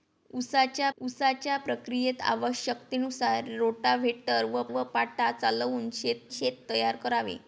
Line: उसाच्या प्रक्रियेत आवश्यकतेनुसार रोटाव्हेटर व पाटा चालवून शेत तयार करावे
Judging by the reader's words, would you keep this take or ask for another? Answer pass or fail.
fail